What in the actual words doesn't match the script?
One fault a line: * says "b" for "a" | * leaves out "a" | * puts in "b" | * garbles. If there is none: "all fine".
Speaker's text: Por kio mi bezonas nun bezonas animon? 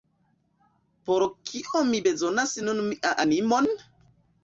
* says "mian" for "bezonas"